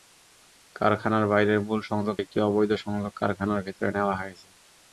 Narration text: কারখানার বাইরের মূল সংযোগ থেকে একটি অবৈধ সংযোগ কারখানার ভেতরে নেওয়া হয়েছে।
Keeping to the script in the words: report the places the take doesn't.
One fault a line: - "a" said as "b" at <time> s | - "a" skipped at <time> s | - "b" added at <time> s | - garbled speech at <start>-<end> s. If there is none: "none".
- "থেকে" skipped at 2.1 s